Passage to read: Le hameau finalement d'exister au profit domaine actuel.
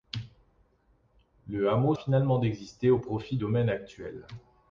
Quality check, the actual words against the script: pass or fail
pass